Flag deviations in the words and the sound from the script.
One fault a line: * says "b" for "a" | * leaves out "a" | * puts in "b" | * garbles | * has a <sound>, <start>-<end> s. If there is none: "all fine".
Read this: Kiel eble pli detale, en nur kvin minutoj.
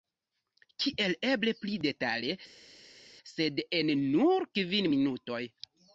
* puts in "sed"